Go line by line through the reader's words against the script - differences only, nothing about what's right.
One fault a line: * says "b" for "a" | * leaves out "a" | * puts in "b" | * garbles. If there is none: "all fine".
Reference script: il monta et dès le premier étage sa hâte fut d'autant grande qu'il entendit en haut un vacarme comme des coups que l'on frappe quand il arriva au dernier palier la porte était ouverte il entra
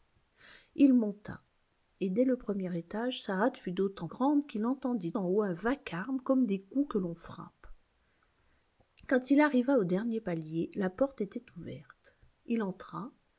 all fine